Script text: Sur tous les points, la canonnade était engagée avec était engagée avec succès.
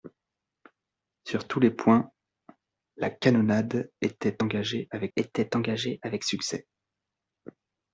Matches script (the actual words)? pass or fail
pass